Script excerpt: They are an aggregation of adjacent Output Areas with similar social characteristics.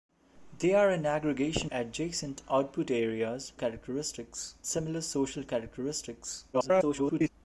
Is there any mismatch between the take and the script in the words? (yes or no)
yes